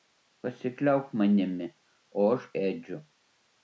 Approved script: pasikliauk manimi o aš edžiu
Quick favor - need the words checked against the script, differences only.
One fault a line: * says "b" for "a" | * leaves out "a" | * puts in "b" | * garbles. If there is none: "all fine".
all fine